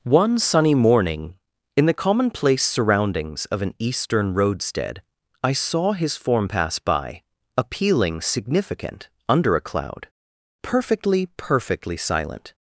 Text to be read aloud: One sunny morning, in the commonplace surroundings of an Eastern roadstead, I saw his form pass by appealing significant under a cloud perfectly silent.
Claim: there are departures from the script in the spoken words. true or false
true